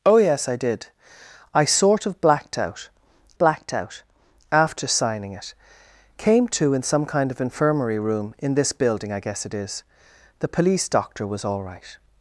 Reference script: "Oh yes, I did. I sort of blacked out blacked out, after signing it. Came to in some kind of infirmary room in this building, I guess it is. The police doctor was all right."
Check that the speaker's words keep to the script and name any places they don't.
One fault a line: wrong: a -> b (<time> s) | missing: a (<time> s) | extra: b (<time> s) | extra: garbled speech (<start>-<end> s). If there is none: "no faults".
no faults